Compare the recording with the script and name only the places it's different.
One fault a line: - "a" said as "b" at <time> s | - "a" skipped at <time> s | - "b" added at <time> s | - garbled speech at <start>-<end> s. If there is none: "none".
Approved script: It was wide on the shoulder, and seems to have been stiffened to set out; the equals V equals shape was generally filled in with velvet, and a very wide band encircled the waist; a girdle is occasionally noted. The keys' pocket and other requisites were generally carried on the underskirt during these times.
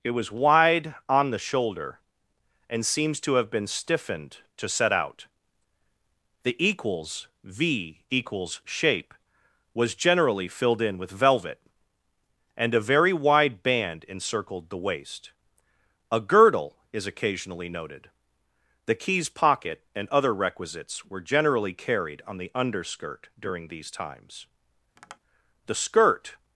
- "The skirt" added at 25.7 s